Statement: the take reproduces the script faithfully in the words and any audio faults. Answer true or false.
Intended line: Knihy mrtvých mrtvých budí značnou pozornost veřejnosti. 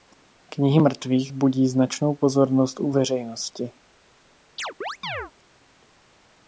false